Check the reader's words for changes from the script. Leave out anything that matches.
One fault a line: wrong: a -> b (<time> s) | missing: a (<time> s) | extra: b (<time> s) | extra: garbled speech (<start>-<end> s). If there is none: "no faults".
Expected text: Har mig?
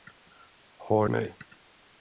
no faults